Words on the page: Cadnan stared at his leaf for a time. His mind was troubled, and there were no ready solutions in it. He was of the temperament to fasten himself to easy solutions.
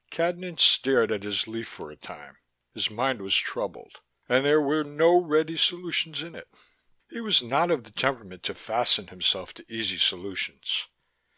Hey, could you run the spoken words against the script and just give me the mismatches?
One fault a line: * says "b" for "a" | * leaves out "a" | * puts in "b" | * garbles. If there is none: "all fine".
* puts in "not"